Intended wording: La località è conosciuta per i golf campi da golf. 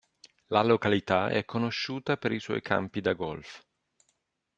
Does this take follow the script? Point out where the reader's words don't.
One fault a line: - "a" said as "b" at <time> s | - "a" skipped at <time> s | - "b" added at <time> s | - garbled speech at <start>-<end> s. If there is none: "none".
- "golf" said as "suoi" at 2.4 s